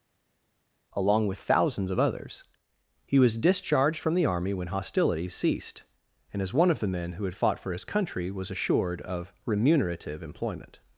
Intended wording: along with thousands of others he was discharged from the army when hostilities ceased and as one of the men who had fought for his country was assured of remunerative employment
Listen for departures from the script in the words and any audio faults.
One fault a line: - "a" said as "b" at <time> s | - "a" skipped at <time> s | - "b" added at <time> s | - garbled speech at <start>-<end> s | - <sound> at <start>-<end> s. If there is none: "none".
none